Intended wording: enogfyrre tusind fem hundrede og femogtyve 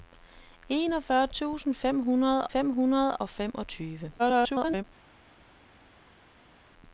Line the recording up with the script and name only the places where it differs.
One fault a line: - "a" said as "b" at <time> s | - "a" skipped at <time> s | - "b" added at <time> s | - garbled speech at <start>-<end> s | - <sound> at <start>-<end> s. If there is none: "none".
- "fem hundrede" added at 2.5 s
- garbled speech at 4.2-4.8 s